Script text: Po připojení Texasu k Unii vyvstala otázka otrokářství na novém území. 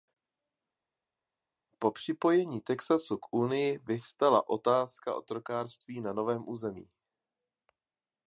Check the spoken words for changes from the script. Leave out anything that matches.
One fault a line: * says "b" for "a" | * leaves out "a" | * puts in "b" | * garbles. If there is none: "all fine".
all fine